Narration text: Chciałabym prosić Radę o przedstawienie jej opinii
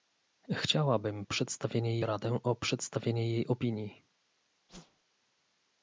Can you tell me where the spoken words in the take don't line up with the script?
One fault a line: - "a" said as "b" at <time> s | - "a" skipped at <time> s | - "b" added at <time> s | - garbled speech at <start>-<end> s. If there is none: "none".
- "prosić" said as "przedstawienie" at 1.2 s